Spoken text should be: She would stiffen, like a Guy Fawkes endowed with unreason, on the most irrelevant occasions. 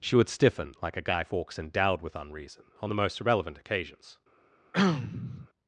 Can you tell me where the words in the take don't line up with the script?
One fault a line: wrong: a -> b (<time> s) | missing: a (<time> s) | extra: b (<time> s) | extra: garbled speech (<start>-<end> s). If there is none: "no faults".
no faults